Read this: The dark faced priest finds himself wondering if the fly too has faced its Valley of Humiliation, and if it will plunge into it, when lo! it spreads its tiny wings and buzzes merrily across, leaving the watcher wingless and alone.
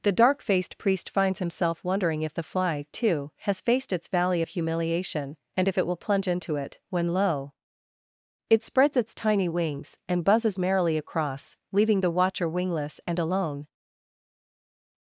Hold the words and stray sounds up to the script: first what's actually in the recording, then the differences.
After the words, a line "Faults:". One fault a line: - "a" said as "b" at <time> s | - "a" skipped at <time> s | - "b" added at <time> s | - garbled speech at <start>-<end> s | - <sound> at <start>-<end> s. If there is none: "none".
The dark faced priest finds himself wondering if the fly too has faced its Valley of Humiliation, and if it will plunge into it, when lo! it spreads its tiny wings and buzzes merrily across, leaving the watcher wingless and alone.
Faults:
none